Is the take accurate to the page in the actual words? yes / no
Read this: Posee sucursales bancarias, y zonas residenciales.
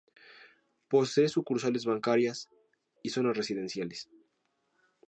yes